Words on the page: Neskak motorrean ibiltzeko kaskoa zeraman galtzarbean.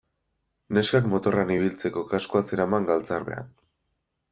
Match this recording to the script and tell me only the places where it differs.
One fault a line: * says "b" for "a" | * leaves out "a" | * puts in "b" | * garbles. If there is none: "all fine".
all fine